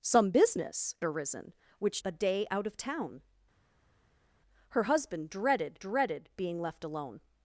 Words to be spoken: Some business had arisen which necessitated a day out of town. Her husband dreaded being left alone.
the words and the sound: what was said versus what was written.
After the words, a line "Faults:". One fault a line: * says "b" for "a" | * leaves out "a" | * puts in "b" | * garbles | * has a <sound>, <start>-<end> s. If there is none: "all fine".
Some business arisen which a day out of town. Her husband dreaded dreaded being left alone.
Faults:
* leaves out "had"
* leaves out "necessitated"
* puts in "dreaded"